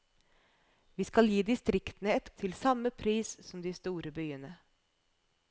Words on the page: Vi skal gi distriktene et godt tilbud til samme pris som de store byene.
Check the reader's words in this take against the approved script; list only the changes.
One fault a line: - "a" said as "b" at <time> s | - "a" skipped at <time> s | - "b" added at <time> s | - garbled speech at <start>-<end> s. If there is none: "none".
- "godt tilbud" skipped at 2.3 s